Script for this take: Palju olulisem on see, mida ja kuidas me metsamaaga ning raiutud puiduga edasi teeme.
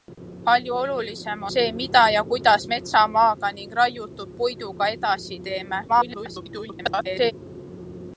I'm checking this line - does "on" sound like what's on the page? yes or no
no